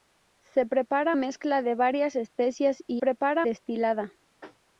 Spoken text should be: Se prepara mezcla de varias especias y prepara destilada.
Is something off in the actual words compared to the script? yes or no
no